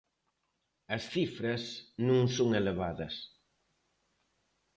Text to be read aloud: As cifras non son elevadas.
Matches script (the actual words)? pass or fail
pass